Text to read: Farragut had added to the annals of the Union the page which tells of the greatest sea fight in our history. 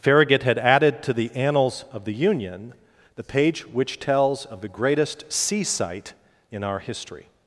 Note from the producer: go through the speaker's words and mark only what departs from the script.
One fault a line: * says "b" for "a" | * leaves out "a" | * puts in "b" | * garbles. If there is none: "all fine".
* says "sight" for "fight"